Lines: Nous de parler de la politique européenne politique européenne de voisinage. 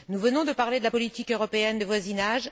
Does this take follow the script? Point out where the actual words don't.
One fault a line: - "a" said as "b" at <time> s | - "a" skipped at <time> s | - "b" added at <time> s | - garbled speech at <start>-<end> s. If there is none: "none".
- "venons" added at 0.2 s
- "politique européenne" skipped at 1.8 s